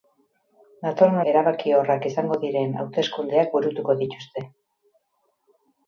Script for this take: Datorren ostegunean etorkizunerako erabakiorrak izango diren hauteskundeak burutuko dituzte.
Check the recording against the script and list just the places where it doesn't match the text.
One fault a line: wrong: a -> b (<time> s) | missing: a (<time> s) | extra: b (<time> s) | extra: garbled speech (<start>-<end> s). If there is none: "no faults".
missing: ostegunean etorkizunerako (1.2 s)